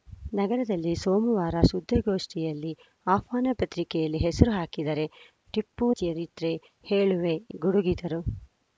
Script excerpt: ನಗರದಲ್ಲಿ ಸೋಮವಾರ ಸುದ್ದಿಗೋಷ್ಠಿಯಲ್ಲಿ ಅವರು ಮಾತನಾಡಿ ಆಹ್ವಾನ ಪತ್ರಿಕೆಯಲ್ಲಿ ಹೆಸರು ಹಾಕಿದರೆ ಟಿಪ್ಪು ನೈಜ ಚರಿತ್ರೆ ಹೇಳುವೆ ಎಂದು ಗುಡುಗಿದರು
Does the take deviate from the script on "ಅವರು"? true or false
true